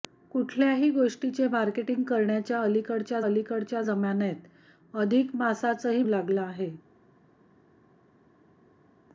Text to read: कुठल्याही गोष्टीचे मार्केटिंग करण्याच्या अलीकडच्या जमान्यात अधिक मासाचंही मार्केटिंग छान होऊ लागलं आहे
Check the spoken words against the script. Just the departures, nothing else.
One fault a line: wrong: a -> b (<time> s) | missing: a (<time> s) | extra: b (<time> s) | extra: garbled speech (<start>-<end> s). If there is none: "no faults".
extra: अलीकडच्या (3.2 s)
missing: मार्केटिंग छान होऊ (6.0 s)